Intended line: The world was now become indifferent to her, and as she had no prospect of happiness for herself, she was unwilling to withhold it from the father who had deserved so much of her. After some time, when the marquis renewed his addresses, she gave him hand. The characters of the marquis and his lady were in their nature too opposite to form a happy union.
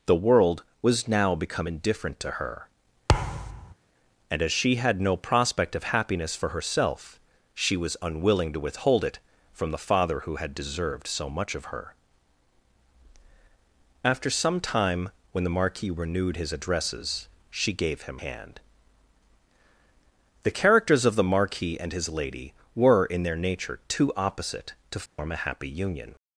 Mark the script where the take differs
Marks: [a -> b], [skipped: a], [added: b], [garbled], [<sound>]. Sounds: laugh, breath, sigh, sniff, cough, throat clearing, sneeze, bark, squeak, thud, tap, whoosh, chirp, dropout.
The world was now become indifferent to her, [thud] and as she had no prospect of happiness for herself, she was unwilling to withhold it from the father who had deserved so much of her. After some time, when the marquis renewed his addresses, she gave him hand. The characters of the marquis and his lady were in their nature too opposite to form [dropout] a happy union.